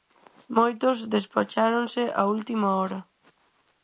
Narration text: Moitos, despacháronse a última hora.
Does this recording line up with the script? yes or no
yes